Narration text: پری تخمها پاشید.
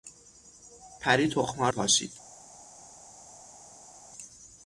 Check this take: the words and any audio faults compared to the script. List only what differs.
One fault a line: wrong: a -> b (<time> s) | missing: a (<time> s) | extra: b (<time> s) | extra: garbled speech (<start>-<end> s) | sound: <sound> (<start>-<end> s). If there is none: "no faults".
no faults